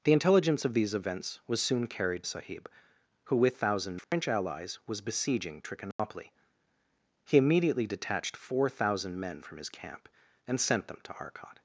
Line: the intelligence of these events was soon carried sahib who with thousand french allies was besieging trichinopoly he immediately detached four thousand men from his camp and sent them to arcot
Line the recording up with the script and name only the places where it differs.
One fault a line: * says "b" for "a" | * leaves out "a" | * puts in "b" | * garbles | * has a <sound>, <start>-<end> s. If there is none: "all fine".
* has a dropout, 4.0-4.1 s
* has a dropout, 5.9-6.0 s